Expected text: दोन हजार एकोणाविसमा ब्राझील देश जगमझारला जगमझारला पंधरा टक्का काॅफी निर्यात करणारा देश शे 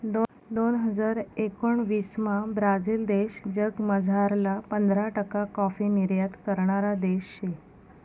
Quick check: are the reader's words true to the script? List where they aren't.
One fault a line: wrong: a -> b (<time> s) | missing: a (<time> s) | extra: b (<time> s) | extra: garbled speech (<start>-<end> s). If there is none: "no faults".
missing: जगमझारला (4.6 s)